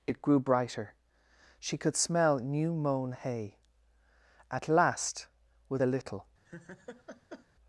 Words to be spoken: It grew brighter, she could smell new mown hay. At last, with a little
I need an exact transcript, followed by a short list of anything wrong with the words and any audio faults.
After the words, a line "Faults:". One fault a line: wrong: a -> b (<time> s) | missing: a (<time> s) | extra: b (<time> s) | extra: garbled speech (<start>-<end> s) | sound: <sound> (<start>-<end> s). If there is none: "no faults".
It grew brighter, she could smell new mown hay. At last, with a little
Faults:
sound: laugh (6.4-7.5 s)